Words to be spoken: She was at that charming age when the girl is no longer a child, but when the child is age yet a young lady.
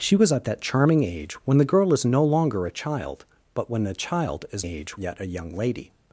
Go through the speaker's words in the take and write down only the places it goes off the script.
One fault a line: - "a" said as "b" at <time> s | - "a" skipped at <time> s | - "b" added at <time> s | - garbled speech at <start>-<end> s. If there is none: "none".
none